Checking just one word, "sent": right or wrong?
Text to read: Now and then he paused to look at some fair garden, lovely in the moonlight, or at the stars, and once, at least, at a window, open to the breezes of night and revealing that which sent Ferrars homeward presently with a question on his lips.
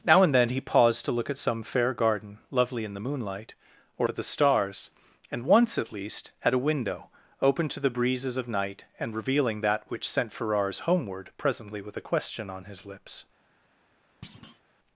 right